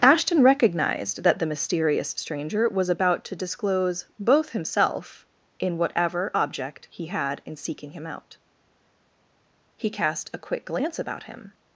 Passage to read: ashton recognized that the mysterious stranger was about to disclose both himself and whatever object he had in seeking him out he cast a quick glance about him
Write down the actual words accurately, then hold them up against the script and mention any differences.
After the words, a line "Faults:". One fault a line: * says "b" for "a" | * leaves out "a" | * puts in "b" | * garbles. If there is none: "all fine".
ashton recognized that the mysterious stranger was about to disclose both himself in whatever object he had in seeking him out he cast a quick glance about him
Faults:
* says "in" for "and"